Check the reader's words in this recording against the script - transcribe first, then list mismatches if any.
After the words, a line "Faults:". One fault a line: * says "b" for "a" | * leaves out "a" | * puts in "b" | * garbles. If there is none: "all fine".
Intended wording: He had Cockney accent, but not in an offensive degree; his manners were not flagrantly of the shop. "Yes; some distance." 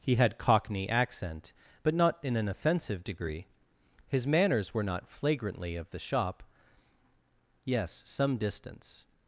He had Cockney accent, but not in an offensive degree; his manners were not flagrantly of the shop. "Yes; some distance."
Faults:
all fine